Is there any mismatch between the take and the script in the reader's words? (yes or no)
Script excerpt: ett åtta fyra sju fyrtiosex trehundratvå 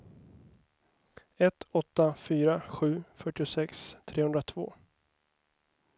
no